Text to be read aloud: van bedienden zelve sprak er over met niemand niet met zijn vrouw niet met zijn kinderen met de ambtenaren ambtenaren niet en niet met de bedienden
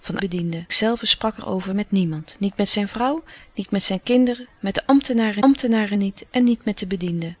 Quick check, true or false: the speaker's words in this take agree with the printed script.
true